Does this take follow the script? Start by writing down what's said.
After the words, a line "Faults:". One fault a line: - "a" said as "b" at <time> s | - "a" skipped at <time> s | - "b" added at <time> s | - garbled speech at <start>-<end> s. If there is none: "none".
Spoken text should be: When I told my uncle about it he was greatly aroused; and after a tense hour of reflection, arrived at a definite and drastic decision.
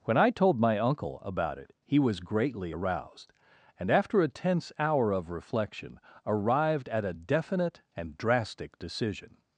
When I told my uncle about it he was greatly aroused; and after a tense hour of reflection, arrived at a definite and drastic decision.
Faults:
none